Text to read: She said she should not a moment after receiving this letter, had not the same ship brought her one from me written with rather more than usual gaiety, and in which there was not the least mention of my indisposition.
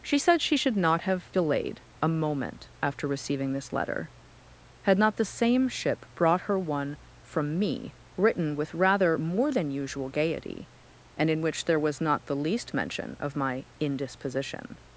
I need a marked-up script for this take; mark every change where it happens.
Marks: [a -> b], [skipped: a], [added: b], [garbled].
She said she should not [added: have delayed] a moment after receiving this letter, had not the same ship brought her one from me written with rather more than usual gaiety, and in which there was not the least mention of my indisposition.